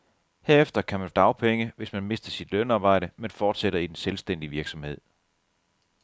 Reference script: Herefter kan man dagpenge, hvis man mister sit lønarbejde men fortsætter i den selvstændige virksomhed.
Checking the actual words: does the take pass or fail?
pass